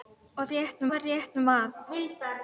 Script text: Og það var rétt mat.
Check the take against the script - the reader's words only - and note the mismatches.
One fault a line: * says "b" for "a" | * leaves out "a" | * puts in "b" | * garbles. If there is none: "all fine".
* says "rétt" for "það"